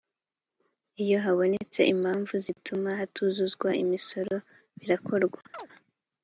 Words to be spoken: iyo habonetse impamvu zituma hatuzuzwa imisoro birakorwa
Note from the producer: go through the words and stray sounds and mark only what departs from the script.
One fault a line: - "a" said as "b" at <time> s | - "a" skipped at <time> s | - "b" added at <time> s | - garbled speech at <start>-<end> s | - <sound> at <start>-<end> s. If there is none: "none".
- chirp at 5.5-5.7 s